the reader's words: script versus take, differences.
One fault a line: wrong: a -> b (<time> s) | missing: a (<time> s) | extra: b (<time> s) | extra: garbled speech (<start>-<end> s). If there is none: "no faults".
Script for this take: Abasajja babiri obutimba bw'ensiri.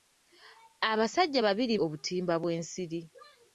no faults